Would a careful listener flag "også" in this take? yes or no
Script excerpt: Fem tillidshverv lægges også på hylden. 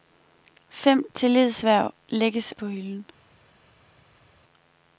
yes